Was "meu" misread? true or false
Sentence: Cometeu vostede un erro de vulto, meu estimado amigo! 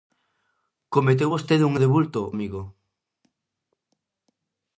true